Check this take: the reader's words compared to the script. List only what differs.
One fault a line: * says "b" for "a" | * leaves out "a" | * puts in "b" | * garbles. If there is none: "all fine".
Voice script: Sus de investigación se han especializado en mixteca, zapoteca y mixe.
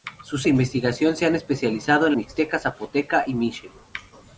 all fine